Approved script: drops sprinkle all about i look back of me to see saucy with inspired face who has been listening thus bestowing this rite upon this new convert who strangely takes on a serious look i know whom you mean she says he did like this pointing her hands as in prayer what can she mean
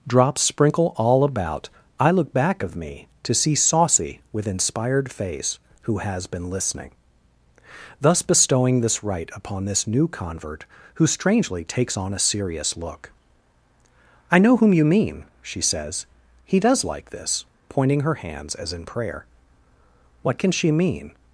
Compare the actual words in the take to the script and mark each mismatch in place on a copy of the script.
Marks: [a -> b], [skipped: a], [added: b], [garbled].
drops sprinkle all about i look back of me to see saucy with inspired face who has been listening thus bestowing this rite upon this new convert who strangely takes on a serious look i know whom you mean she says he [did -> does] like this pointing her hands as in prayer what can she mean